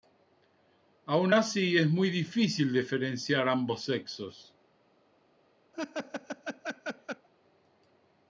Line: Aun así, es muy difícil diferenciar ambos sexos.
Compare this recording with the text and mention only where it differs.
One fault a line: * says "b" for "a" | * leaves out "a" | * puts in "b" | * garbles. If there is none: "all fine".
all fine